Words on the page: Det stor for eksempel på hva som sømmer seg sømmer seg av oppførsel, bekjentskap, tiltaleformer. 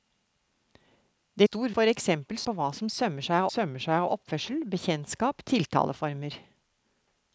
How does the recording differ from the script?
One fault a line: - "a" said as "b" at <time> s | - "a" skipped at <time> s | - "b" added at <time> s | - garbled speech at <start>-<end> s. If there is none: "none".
none